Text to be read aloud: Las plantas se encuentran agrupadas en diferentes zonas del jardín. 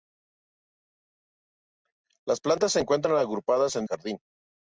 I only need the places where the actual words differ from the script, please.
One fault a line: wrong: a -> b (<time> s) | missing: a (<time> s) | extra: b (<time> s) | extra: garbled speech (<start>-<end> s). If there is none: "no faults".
missing: diferentes zonas del (3.9 s)